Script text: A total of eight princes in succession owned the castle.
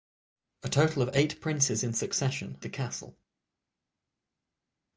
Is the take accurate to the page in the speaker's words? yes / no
no